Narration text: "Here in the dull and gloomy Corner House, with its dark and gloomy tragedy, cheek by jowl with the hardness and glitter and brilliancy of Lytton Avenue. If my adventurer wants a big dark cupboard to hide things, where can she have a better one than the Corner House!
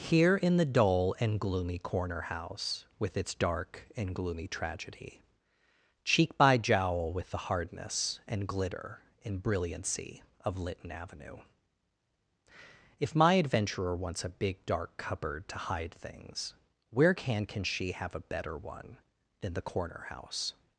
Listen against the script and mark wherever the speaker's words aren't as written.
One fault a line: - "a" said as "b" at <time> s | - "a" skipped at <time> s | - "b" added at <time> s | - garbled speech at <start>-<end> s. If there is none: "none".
- "can" added at 17.5 s